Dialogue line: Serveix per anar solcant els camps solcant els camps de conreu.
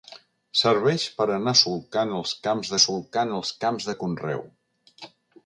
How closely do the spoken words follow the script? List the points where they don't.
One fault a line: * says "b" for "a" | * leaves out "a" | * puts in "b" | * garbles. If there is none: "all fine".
all fine